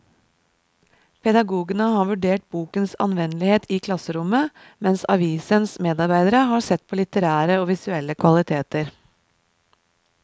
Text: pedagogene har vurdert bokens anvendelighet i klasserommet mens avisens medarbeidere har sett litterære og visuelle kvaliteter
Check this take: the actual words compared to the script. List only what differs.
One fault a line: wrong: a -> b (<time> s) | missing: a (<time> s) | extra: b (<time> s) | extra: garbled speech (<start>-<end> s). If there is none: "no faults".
extra: på (6.9 s)